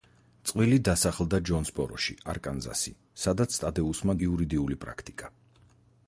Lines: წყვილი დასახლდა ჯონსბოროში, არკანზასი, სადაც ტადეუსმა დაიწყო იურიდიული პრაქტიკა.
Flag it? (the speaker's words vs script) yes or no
yes